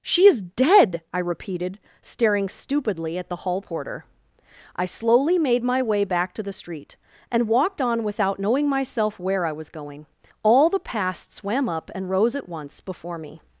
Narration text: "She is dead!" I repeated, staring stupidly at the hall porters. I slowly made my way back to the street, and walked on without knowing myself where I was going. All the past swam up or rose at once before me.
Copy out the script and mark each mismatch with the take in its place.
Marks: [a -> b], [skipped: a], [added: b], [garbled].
"She is dead!" I repeated, staring stupidly at the hall [porters. -> porter] I slowly made my way back to the street, and walked on without knowing myself where I was going. All the past swam up [or -> and] rose at once before me.